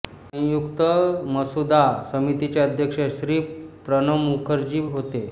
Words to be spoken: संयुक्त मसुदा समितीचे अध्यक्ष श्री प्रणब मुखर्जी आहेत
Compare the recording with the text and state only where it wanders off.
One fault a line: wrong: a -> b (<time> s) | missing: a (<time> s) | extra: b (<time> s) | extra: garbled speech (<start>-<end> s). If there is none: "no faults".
wrong: आहेत -> होते (4.9 s)